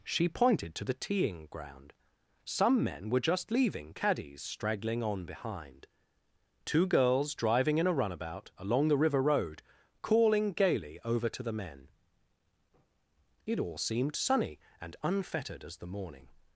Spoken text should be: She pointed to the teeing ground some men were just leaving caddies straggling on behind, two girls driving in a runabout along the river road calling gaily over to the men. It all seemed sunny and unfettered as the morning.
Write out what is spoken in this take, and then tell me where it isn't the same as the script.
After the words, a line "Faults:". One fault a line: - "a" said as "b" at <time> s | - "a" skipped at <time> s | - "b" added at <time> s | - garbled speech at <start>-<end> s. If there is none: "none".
She pointed to the teeing ground some men were just leaving caddies straggling on behind, two girls driving in a runabout along the river road calling gaily over to the men. It all seemed sunny and unfettered as the morning.
Faults:
none